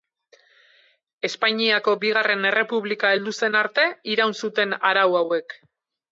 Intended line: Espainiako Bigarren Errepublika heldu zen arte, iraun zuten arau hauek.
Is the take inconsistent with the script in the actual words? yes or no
no